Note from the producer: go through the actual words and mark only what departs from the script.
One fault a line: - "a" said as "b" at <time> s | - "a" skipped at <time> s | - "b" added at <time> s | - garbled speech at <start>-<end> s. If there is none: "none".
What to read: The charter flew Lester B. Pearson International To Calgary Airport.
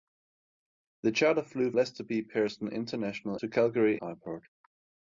none